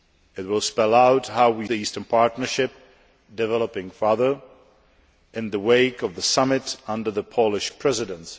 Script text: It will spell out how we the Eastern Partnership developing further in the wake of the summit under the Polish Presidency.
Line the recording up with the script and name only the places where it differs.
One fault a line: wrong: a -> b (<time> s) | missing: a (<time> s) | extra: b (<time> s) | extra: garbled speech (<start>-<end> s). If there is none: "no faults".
no faults